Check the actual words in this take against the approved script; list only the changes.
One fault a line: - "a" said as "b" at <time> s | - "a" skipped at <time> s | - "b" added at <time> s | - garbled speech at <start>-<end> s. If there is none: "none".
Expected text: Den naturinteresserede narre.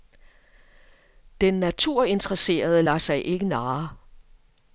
- "lader sig ikke" added at 2.8 s